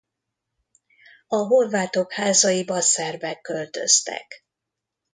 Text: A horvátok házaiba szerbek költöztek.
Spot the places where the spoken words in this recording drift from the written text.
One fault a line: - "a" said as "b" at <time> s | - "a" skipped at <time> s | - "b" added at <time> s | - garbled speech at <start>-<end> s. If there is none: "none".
none